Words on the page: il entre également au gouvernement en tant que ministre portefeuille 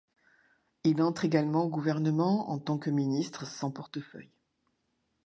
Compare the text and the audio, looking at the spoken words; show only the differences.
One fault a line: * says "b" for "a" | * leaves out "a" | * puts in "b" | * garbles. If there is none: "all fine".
* puts in "sans"